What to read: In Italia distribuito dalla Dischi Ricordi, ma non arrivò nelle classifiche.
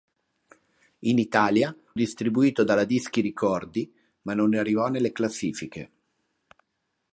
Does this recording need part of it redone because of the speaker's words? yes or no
no